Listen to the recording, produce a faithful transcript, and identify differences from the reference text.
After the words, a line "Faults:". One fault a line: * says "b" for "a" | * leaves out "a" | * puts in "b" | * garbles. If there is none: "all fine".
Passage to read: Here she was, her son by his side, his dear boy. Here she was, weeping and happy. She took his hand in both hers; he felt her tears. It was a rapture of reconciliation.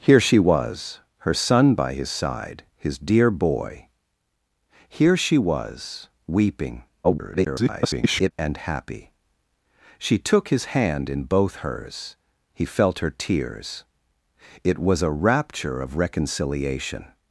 Here she was, her son by his side, his dear boy. Here she was, weeping [garbled] and happy. She took his hand in both hers; he felt her tears. It was a rapture of reconciliation.
Faults:
* garbles